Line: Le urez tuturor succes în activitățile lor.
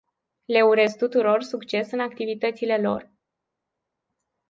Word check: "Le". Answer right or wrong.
right